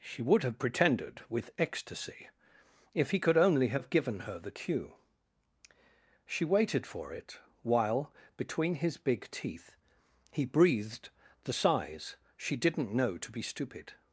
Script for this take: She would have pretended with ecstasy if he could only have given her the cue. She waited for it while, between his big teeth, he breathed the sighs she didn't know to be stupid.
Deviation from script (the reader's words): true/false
false